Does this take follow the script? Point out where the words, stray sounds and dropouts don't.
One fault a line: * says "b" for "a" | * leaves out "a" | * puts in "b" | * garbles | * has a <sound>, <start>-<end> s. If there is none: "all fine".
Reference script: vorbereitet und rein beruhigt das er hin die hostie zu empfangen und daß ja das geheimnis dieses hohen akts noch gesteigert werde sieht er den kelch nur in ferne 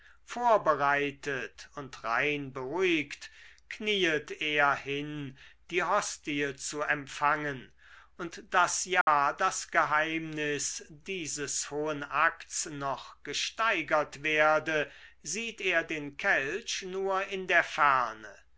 * says "knieet" for "das"
* has a dropout, 9.0-9.1 s
* puts in "der"